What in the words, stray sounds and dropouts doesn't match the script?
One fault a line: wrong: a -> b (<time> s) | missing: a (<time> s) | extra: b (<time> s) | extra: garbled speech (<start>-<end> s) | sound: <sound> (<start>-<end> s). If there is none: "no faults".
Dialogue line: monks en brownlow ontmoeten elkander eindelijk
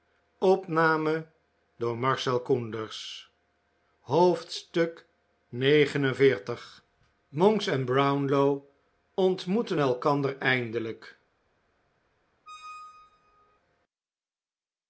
sound: squeak (12.5-13.6 s)